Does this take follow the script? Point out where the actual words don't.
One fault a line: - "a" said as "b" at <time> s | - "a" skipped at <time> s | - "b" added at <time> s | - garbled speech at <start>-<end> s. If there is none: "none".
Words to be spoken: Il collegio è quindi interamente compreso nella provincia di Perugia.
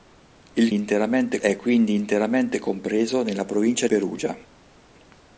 - "collegio" said as "interamente" at 0.7 s
- "di" skipped at 3.9 s